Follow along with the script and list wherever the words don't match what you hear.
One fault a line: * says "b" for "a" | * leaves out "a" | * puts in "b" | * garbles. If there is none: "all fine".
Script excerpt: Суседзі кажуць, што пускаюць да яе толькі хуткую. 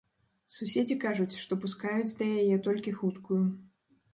all fine